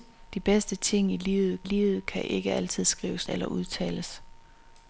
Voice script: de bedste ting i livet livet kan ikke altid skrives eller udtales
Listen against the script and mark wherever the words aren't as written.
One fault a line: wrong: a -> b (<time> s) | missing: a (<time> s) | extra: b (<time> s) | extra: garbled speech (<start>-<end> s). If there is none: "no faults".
no faults